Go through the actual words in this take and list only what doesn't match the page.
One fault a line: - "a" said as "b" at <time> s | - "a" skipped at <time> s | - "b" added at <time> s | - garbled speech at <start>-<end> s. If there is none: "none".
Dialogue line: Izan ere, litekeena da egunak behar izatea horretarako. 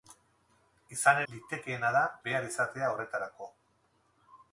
- "ere" skipped at 1.2 s
- "egunak" skipped at 2.0 s